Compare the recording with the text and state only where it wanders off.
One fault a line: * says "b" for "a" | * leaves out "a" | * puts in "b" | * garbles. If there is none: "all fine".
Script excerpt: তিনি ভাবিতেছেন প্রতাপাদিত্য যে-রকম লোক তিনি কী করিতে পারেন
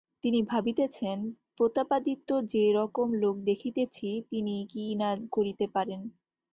* puts in "দেখিতেছি"
* puts in "না"